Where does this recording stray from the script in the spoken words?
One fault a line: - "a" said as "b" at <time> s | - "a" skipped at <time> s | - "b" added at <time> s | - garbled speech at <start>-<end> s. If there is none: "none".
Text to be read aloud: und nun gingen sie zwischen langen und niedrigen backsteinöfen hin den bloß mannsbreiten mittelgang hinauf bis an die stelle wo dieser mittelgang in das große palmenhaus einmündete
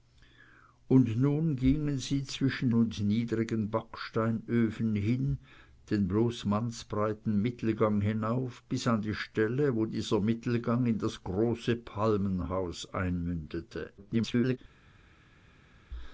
- "langen" skipped at 2.7 s
- garbled speech at 14.0-14.6 s